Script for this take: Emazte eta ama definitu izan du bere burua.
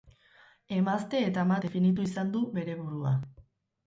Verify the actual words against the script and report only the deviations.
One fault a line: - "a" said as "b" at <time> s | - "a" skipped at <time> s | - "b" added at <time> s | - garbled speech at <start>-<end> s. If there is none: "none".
none